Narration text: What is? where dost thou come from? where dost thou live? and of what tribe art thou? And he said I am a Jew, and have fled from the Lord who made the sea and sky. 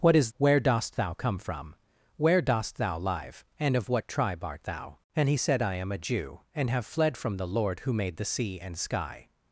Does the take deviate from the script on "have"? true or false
false